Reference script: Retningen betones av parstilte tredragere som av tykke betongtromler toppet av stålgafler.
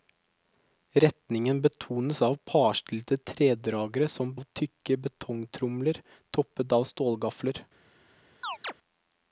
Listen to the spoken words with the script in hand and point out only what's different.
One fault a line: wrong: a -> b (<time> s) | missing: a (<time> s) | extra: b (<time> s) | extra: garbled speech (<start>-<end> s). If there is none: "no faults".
no faults